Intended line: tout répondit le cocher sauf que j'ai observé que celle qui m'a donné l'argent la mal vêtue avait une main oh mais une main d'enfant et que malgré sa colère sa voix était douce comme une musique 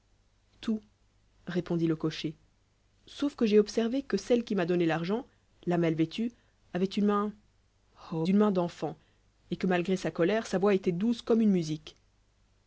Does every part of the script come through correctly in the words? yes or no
no